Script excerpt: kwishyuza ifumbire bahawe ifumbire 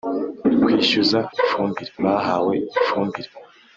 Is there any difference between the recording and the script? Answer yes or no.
no